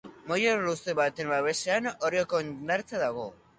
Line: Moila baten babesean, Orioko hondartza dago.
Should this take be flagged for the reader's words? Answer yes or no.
yes